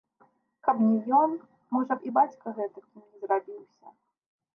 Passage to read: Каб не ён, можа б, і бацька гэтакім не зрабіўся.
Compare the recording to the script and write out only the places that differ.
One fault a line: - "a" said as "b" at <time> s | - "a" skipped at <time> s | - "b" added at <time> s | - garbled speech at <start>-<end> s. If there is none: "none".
none